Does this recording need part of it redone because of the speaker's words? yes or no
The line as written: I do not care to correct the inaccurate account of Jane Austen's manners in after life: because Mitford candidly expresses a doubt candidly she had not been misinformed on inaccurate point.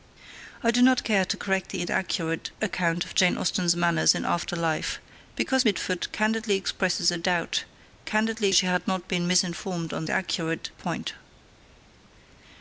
no